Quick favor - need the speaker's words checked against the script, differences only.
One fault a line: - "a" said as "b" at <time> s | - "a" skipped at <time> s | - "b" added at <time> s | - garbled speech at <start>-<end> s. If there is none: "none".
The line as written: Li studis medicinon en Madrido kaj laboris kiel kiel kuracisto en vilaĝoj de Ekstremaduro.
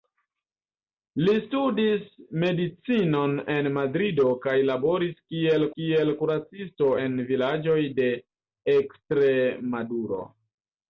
none